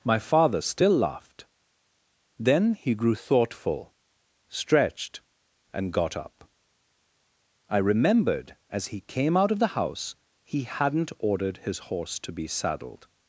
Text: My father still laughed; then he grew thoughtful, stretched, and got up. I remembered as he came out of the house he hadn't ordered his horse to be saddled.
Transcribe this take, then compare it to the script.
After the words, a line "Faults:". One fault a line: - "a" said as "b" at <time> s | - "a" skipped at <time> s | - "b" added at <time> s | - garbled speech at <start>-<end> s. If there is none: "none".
My father still laughed; then he grew thoughtful, stretched, and got up. I remembered as he came out of the house he hadn't ordered his horse to be saddled.
Faults:
none